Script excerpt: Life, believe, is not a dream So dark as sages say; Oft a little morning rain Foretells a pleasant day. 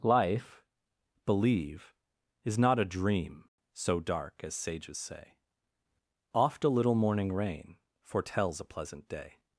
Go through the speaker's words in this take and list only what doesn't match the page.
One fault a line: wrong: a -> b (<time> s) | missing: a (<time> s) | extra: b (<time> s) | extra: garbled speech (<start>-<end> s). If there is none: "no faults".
no faults